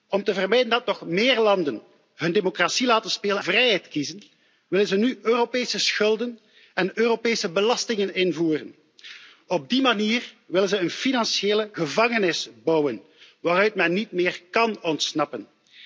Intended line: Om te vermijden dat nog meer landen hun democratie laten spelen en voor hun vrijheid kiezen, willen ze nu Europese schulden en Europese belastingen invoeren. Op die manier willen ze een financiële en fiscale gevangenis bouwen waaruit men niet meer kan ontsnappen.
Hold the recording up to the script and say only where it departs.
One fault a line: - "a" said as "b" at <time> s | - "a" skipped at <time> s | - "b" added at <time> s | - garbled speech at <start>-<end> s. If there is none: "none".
- "en voor hun" skipped at 3.4 s
- "en fiscale" skipped at 11.7 s